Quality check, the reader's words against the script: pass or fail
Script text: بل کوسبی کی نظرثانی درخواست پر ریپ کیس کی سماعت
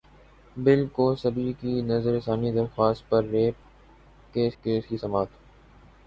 fail